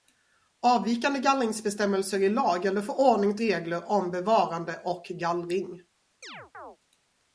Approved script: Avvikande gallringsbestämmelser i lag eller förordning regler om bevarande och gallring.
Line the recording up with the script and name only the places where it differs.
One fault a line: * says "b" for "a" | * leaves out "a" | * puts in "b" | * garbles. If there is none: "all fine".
all fine